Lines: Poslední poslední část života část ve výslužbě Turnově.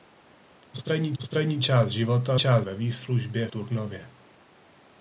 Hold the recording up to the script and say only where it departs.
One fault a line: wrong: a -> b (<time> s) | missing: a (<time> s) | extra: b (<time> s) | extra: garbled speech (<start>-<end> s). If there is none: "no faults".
no faults